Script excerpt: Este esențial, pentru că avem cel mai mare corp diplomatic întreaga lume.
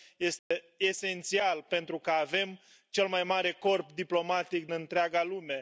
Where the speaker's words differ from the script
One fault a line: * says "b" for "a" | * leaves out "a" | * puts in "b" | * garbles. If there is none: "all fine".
all fine